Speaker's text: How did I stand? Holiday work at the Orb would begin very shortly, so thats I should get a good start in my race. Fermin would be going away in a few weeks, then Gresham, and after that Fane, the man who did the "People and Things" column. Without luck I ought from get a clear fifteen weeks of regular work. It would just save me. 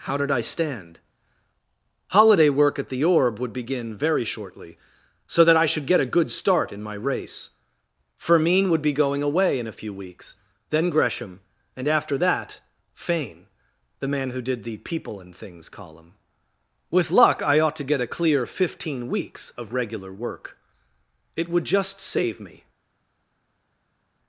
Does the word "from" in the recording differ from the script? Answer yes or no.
yes